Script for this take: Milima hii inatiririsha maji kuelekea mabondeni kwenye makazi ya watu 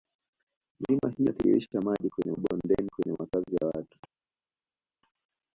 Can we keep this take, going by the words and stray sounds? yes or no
no